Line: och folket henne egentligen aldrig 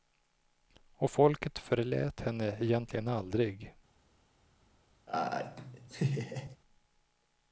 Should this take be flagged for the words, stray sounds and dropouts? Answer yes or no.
yes